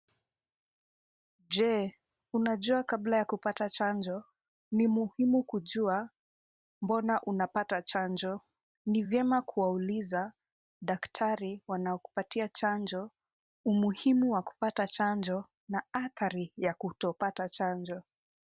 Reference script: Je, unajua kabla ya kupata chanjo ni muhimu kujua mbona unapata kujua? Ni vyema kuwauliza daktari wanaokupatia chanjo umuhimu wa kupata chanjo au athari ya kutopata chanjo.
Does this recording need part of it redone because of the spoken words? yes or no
yes